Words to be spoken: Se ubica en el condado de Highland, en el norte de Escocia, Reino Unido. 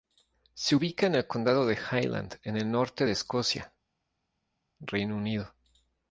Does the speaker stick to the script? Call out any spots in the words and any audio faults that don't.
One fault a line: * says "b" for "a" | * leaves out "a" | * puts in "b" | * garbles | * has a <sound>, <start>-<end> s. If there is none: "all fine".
all fine